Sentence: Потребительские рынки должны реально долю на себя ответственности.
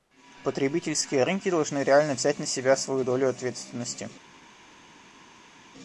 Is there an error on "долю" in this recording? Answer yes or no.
yes